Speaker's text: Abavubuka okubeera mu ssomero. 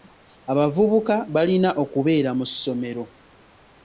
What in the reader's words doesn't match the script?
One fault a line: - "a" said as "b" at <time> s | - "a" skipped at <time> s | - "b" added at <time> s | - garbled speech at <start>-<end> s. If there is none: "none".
- "balina" added at 1.3 s